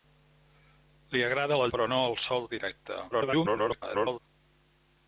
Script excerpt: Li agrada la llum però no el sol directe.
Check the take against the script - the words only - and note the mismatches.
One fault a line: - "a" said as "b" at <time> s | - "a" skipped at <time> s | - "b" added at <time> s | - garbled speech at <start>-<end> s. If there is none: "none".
- "llum" skipped at 1.7 s
- garbled speech at 3.1-4.2 s